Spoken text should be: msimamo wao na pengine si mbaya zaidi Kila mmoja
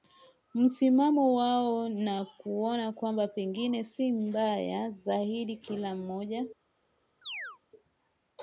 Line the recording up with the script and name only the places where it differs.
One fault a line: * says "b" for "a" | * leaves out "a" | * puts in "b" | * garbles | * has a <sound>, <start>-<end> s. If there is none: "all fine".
* puts in "kuona kwamba"
* has a chirp, 7.2-7.6 s